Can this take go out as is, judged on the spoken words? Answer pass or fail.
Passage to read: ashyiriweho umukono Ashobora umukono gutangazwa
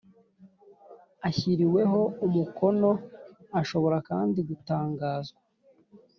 fail